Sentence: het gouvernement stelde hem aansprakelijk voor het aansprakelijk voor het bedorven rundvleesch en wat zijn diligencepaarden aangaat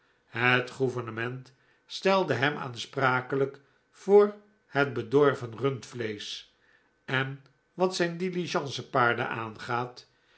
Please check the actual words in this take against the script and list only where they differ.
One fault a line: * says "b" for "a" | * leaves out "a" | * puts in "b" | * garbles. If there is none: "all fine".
* leaves out "aansprakelijk voor het"